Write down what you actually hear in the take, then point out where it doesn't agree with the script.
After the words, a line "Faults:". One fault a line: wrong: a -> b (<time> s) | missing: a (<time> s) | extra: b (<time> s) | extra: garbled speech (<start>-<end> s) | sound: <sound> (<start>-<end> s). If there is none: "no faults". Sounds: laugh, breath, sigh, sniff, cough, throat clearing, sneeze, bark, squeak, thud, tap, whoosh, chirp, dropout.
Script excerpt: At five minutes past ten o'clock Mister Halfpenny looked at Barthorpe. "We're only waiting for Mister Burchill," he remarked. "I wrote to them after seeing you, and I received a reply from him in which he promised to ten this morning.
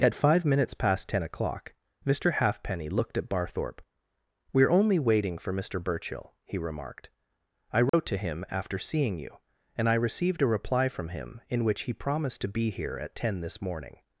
At five minutes past ten o'clock Mister Halfpenny looked at Barthorpe. "We're only waiting for Mister Burchill," he remarked. "I wrote to him after seeing you, and I received a reply from him in which he promised to be here at ten this morning.
Faults:
sound: dropout (7.9-7.9 s)
wrong: them -> him (8.2 s)
extra: be here at (12.6 s)